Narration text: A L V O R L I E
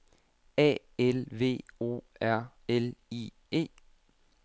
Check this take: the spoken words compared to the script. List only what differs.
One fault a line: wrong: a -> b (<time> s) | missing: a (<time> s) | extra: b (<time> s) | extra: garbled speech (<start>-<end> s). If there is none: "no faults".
no faults